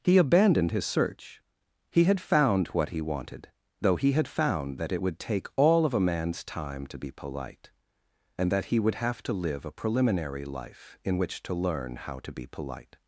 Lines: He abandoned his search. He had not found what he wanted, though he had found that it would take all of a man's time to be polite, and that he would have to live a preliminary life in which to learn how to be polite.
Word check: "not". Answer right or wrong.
wrong